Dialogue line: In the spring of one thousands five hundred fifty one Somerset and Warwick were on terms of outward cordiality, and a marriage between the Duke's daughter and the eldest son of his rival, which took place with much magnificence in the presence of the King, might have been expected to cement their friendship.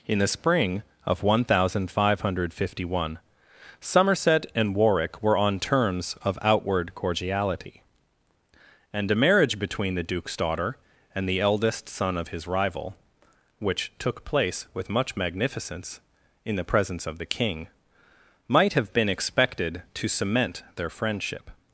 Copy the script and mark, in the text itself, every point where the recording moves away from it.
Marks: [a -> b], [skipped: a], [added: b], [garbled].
In the spring of one [thousands -> thousand] five hundred fifty one Somerset and Warwick were on terms of outward cordiality, and a marriage between the Duke's daughter and the eldest son of his rival, which took place with much magnificence in the presence of the King, might have been expected to cement their friendship.